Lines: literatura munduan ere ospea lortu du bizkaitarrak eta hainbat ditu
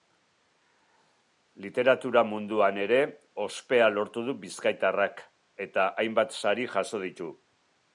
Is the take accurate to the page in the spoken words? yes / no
no